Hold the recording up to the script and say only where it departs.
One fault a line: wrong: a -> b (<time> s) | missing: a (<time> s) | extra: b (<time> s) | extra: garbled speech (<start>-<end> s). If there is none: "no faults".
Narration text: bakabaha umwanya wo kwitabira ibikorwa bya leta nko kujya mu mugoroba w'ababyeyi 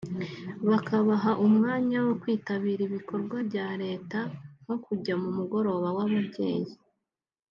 no faults